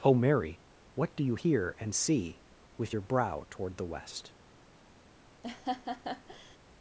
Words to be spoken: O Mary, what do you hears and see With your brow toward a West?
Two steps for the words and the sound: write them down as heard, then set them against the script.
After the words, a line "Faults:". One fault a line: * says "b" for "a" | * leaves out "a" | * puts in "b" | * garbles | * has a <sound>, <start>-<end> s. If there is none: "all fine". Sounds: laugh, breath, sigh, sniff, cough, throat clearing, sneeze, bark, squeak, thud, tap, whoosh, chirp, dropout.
O Mary, what do you hear and see With your brow toward the West?
Faults:
* says "hear" for "hears"
* says "the" for "a"
* has a laugh, 5.4-6.6 s